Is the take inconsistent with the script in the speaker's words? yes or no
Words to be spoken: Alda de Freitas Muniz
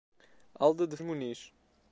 yes